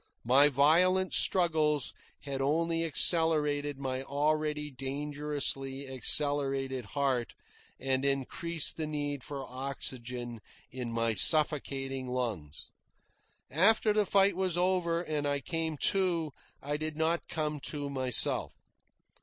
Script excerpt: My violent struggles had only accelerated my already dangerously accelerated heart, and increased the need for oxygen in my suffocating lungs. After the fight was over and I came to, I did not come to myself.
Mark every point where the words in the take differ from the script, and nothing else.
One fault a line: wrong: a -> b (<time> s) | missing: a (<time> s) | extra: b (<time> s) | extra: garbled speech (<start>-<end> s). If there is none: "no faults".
no faults